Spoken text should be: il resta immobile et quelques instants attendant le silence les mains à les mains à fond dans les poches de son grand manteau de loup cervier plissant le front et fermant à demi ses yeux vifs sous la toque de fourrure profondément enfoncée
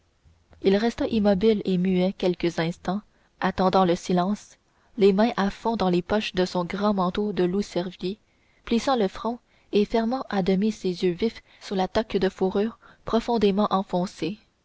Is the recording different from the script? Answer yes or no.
yes